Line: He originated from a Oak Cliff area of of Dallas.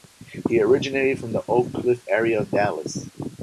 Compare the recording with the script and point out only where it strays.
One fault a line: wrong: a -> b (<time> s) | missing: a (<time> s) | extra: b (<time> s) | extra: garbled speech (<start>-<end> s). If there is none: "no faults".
wrong: a -> the (1.3 s)
missing: of (2.5 s)